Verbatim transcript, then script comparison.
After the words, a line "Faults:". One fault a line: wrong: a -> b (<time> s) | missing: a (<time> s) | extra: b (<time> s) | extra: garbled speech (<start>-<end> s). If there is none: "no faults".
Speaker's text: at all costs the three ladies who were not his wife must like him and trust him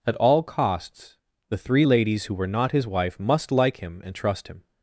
at all costs the three ladies who were not his wife must like him and trust him
Faults:
no faults